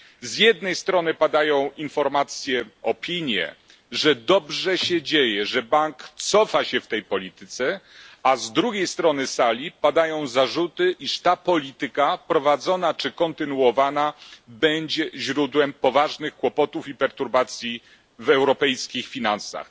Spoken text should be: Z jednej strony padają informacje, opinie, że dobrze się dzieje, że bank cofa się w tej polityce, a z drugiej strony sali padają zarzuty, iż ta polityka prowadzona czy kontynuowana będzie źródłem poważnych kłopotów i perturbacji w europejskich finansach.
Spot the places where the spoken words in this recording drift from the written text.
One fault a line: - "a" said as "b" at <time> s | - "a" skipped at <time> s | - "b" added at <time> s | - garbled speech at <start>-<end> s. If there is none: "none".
none